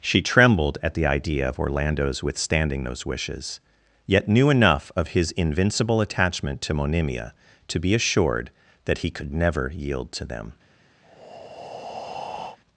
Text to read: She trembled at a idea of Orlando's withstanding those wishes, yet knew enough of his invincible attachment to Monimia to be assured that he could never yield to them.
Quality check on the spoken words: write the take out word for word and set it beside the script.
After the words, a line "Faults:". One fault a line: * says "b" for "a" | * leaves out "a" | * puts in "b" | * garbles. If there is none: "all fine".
She trembled at the idea of Orlando's withstanding those wishes, yet knew enough of his invincible attachment to Monimia to be assured that he could never yield to them.
Faults:
* says "the" for "a"